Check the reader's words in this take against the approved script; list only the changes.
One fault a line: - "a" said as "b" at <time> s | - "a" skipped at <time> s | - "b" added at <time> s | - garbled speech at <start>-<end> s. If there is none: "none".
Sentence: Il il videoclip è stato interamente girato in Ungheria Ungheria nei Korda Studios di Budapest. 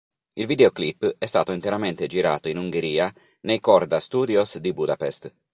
- "il" skipped at 0.5 s
- "Ungheria" skipped at 3.1 s